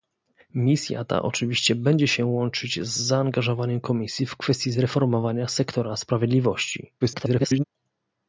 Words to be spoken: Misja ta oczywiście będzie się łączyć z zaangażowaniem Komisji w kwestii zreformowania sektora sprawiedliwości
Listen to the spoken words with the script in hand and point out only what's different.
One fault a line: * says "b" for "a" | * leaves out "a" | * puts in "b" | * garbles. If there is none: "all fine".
* garbles